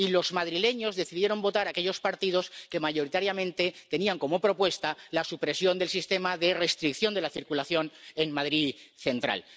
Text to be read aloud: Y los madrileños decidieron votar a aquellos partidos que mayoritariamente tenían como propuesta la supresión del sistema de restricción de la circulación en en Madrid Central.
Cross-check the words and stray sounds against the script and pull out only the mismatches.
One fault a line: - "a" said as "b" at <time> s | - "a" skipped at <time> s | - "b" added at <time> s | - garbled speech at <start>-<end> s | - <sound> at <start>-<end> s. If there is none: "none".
- "en" skipped at 8.3 s